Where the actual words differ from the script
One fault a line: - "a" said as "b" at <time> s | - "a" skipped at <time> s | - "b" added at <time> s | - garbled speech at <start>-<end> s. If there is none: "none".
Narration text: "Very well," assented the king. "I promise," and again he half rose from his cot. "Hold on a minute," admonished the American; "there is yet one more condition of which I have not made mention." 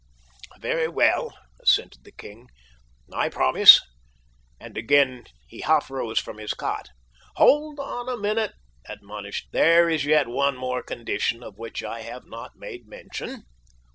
- "the American" skipped at 9.4 s